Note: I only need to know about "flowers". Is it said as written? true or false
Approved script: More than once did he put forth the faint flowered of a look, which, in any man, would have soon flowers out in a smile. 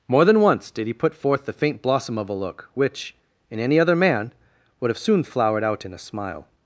false